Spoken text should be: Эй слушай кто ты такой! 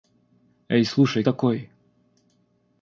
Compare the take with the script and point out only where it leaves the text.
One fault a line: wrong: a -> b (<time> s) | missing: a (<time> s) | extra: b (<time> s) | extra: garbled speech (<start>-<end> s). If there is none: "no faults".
missing: кто ты (1.2 s)